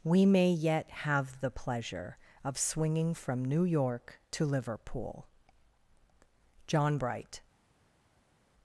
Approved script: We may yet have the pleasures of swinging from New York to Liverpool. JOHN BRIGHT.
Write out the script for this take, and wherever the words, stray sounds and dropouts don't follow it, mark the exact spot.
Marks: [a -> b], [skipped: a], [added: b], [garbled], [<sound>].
We may yet have the [pleasures -> pleasure] of swinging from New York to Liverpool. JOHN BRIGHT.